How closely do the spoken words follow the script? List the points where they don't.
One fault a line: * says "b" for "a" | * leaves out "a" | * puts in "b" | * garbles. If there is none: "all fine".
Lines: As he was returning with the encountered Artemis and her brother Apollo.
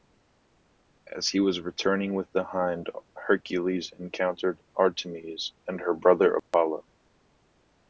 * puts in "hind Hercules"